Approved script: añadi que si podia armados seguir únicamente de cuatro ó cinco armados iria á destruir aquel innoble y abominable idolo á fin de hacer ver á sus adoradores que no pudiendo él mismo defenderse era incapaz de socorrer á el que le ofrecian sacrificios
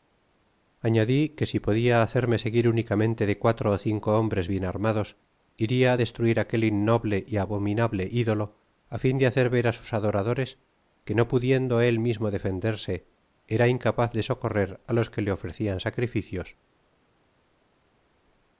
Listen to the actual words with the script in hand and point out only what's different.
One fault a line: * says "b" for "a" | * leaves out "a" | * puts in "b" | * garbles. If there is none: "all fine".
* says "hacerme" for "armados"
* puts in "hombres bien"
* says "los" for "el"